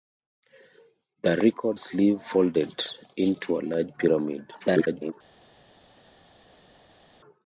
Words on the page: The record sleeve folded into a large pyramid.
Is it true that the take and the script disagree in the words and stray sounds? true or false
true